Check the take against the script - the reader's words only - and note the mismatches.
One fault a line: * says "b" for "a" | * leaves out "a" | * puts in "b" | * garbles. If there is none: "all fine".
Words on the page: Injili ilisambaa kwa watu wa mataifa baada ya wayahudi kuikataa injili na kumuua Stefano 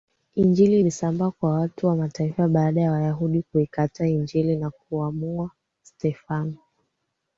all fine